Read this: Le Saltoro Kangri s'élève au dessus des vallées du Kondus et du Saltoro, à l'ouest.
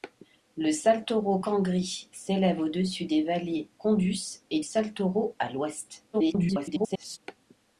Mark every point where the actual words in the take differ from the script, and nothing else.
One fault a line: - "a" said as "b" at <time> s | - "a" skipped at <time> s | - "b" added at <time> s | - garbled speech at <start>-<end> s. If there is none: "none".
- "du" skipped at 3.7 s
- "du" skipped at 4.6 s
- garbled speech at 6.1-7.2 s